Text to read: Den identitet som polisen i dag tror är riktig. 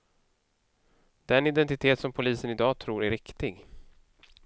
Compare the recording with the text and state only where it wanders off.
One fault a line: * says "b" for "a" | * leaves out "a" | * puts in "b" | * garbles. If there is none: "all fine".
all fine